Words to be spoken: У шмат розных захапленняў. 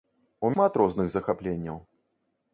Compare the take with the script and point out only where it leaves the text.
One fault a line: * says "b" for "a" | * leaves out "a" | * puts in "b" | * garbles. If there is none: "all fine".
all fine